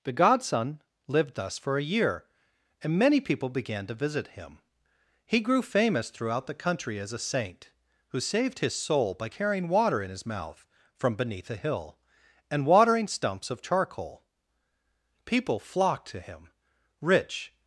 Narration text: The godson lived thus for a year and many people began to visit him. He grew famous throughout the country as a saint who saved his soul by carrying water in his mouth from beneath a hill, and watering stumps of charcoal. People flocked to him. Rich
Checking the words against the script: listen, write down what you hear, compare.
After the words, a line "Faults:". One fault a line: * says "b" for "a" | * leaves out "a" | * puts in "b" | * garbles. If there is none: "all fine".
The godson lived thus for a year and many people began to visit him. He grew famous throughout the country as a saint who saved his soul by carrying water in his mouth from beneath a hill, and watering stumps of charcoal. People flocked to him. Rich
Faults:
all fine